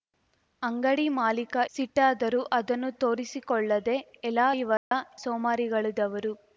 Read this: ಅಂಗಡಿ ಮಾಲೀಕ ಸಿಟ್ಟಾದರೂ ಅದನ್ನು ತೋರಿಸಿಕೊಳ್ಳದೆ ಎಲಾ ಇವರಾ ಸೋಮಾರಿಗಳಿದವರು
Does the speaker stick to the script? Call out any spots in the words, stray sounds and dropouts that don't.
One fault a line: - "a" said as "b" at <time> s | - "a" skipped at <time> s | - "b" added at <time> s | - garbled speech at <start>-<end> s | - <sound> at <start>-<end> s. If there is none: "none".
- dropout at 4.8-4.9 s